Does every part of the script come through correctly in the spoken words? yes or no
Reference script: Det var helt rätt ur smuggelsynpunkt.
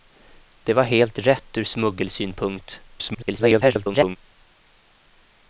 no